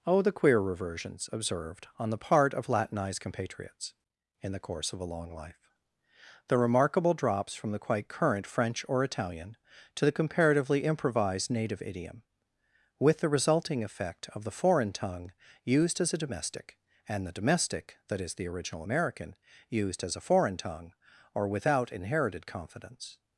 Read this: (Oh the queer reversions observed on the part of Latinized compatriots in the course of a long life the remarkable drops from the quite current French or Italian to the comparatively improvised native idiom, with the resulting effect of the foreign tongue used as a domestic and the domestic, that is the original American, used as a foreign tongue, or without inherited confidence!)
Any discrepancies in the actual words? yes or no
no